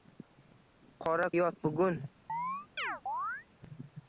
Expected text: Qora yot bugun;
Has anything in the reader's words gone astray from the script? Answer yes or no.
no